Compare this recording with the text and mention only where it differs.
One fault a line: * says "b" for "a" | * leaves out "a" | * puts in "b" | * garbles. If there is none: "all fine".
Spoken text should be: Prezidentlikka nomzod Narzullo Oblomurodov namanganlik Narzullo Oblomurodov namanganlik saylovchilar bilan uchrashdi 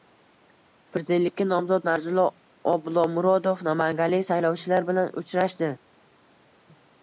* leaves out "Narzullo Oblomurodov namanganlik"